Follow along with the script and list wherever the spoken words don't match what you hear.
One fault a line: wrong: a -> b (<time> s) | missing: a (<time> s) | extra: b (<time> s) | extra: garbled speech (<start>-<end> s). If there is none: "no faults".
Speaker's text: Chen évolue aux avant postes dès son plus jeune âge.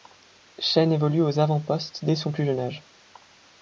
no faults